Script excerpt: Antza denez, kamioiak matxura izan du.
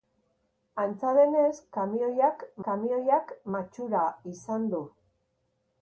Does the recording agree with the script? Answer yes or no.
no